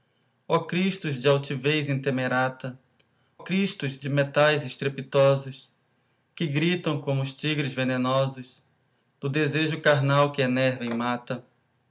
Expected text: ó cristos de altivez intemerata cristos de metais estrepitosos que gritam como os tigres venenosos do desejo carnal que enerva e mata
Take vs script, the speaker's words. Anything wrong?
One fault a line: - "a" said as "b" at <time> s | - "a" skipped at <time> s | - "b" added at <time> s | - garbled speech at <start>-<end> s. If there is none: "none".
none